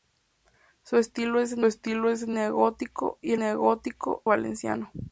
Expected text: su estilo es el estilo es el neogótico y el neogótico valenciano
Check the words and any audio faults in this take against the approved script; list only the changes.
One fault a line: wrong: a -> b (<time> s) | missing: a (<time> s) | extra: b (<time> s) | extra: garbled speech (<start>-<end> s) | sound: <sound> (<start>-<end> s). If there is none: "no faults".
no faults